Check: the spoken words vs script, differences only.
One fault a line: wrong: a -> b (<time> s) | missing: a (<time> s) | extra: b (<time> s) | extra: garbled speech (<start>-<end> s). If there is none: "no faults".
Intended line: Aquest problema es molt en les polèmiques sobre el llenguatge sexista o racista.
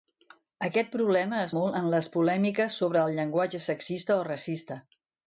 no faults